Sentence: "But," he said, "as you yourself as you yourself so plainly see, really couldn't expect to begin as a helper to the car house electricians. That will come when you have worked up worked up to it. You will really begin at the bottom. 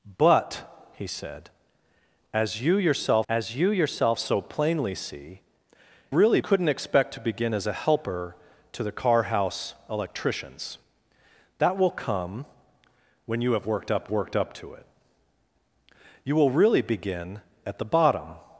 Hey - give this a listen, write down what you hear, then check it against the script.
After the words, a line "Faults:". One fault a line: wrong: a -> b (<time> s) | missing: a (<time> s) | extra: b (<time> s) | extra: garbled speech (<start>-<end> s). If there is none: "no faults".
"But," he said, "as you yourself as you yourself so plainly see, really couldn't expect to begin as a helper to the car house electricians. That will come when you have worked up worked up to it. You will really begin at the bottom.
Faults:
no faults